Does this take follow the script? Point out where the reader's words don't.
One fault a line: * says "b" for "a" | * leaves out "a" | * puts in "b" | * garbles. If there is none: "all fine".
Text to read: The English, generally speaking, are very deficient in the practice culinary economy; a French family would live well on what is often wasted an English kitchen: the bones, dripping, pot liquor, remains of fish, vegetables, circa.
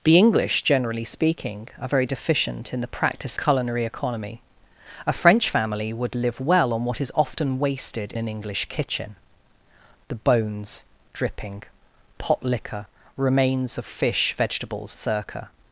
all fine